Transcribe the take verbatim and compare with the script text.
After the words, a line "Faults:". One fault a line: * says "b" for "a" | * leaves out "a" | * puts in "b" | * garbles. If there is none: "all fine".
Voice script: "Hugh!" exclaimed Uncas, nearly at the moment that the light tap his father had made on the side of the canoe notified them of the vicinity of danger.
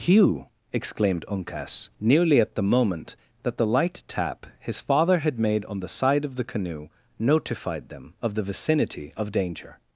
"Hugh!" exclaimed Uncas, nearly at the moment that the light tap his father had made on the side of the canoe notified them of the vicinity of danger.
Faults:
all fine